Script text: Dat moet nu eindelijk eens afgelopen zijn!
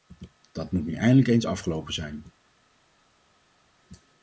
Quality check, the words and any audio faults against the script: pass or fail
pass